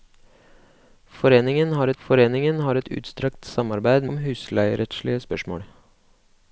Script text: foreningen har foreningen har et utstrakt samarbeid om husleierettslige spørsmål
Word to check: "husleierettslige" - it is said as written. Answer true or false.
true